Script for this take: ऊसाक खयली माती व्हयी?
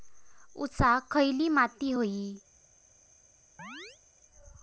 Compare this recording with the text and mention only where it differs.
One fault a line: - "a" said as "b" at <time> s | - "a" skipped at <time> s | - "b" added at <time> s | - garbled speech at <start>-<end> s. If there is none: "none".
none